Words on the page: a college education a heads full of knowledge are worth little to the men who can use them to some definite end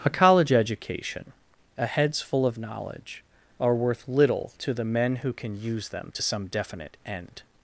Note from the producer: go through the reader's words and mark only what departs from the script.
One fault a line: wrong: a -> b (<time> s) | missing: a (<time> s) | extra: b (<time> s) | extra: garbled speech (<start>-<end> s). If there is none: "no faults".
no faults